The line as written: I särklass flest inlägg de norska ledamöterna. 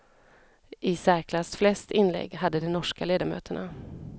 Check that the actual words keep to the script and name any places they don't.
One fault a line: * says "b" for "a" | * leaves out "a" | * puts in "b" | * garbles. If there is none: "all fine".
* puts in "hade"